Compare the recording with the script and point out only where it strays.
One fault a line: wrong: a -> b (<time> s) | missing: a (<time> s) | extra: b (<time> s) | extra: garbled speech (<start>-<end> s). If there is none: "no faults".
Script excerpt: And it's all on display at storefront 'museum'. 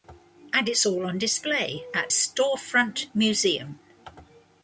no faults